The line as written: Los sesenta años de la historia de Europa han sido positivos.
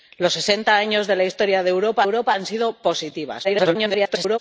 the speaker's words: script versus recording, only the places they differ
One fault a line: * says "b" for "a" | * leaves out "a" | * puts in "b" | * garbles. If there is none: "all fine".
* puts in "Europa"
* garbles